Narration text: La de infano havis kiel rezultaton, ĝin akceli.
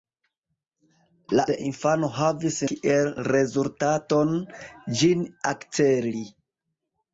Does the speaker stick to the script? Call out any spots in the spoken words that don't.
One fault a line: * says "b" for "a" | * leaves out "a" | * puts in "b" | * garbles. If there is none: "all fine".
all fine